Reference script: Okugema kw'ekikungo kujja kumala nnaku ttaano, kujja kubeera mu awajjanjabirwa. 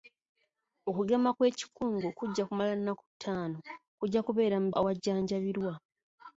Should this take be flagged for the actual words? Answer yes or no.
no